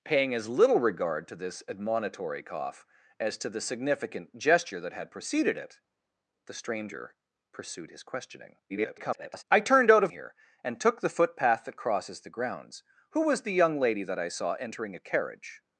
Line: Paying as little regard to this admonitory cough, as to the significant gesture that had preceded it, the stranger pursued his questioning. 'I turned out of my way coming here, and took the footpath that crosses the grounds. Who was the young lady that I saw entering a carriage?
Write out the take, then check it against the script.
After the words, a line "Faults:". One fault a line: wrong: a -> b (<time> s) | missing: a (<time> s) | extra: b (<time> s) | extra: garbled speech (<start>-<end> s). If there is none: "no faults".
Paying as little regard to this admonitory cough, as to the significant gesture that had preceded it, the stranger pursued his questioning. [garbled] 'I turned out of here, and took the footpath that crosses the grounds. Who was the young lady that I saw entering a carriage?
Faults:
extra: garbled speech (8.7-9.4 s)
missing: my way coming (10.1 s)